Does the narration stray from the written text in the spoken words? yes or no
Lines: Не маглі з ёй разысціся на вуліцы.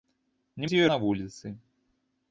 yes